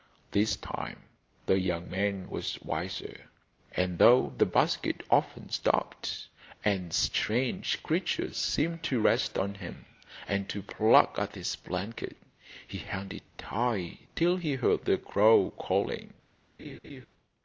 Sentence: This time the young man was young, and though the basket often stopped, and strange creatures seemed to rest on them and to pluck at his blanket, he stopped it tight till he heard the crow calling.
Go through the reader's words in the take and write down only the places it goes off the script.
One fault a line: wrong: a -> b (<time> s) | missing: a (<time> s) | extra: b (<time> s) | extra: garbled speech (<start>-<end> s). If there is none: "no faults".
wrong: young -> wiser (2.6 s)
wrong: them -> him (9.5 s)
wrong: stopped -> held (12.8 s)